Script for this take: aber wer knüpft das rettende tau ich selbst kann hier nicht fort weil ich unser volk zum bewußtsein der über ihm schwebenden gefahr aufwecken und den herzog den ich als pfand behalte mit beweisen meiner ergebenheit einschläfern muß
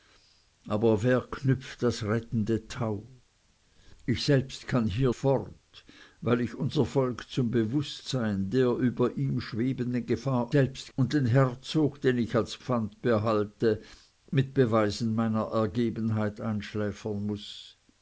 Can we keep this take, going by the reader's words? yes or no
no